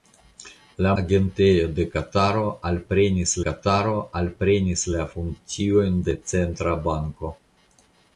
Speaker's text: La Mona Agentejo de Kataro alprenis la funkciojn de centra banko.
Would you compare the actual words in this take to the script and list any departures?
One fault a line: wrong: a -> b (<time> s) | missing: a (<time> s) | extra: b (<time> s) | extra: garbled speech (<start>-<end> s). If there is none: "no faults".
missing: Mona (0.9 s)
extra: Kataro alprenis (3.5 s)